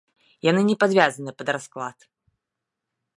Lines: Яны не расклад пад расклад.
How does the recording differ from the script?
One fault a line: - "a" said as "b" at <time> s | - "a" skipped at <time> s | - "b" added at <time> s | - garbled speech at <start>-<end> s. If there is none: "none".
- "расклад" said as "падвязаны" at 0.8 s